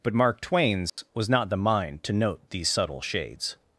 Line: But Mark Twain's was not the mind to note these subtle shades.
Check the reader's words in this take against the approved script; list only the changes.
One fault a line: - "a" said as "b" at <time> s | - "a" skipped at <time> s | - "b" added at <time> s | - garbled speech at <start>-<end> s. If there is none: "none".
none